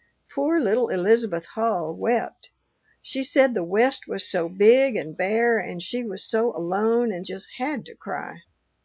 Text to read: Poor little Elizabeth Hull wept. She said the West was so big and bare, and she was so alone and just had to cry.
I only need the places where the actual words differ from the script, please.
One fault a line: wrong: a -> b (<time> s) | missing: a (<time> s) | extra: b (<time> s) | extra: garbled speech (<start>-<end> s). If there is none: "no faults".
no faults